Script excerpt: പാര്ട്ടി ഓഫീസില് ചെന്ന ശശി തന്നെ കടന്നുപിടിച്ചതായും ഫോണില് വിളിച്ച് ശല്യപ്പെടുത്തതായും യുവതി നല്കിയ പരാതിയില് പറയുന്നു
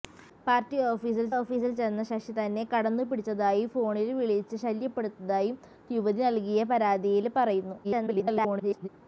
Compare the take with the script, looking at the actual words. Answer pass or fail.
fail